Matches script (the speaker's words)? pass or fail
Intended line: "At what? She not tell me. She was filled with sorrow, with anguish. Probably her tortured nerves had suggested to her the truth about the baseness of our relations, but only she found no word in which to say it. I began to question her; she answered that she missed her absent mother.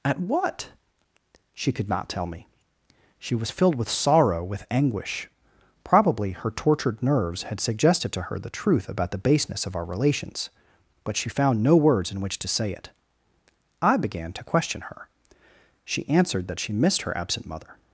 fail